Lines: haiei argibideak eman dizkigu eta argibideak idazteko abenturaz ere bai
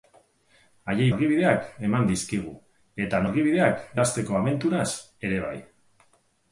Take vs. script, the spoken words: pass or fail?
pass